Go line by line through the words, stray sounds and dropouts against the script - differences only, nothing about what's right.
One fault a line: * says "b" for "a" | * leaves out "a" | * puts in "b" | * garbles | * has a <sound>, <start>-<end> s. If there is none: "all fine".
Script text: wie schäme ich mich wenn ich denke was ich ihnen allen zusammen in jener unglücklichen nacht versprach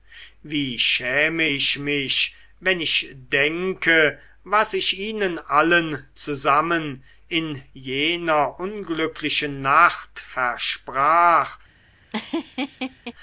* has a laugh, 12.1-13.1 s